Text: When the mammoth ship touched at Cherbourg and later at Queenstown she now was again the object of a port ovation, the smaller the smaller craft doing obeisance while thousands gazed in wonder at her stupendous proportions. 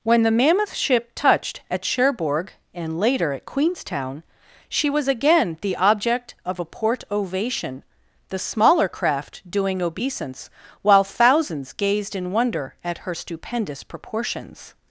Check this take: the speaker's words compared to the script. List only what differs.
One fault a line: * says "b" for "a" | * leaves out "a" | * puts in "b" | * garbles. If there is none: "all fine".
* leaves out "now"
* leaves out "the smaller"